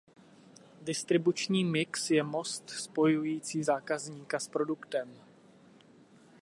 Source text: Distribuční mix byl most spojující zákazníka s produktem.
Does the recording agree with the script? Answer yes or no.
no